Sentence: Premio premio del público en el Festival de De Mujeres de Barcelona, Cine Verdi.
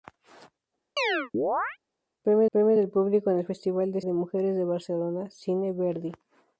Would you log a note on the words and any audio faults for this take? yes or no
yes